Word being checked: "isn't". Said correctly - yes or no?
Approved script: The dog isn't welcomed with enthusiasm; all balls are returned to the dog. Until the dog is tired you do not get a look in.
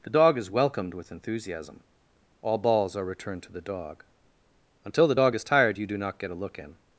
no